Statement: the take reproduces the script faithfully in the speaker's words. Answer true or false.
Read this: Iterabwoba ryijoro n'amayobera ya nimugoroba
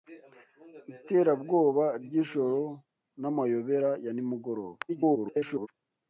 false